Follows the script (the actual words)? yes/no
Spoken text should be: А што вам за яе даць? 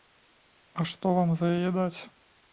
yes